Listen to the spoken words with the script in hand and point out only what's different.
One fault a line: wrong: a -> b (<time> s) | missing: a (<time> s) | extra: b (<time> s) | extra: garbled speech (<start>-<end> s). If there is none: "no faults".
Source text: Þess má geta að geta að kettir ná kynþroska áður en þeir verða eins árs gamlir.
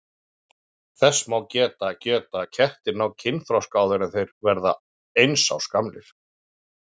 no faults